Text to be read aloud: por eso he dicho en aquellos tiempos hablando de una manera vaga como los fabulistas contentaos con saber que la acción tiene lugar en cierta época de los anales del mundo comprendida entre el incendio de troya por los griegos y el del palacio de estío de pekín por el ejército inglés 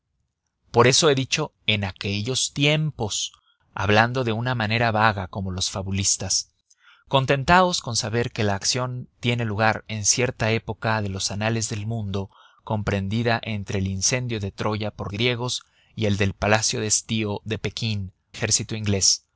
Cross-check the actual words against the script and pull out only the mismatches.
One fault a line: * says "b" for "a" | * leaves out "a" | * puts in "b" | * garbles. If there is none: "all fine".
* leaves out "los"
* leaves out "por el"